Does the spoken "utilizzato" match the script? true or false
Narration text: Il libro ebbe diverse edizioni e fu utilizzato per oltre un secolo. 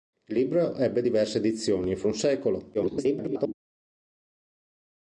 false